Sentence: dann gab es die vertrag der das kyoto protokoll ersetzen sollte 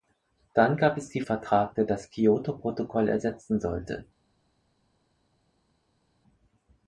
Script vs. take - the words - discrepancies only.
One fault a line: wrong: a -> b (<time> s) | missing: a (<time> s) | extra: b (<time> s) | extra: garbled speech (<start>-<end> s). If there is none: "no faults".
no faults